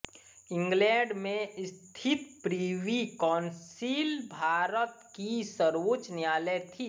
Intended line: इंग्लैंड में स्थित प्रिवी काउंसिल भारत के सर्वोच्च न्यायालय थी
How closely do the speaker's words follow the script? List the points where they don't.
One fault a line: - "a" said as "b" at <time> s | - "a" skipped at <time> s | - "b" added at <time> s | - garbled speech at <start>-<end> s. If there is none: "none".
- "के" said as "की" at 5.2 s